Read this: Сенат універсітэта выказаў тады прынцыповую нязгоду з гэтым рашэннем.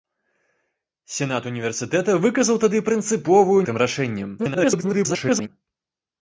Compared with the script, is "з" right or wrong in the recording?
wrong